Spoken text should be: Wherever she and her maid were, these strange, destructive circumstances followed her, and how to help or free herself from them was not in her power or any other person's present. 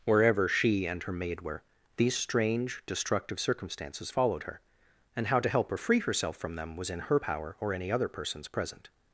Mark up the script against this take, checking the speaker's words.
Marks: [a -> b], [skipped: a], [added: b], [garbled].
Wherever she and her maid were, these strange, destructive circumstances followed her, and how to help or free herself from them was [skipped: not] in her power or any other person's present.